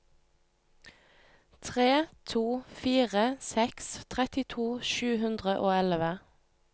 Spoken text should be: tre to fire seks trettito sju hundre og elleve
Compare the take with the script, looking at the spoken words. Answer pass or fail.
pass